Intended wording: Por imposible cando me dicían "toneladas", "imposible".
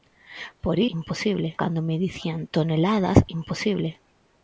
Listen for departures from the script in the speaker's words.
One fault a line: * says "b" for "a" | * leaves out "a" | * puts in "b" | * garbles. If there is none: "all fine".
all fine